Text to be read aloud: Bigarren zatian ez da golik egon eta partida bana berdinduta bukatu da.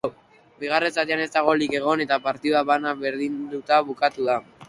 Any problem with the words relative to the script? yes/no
no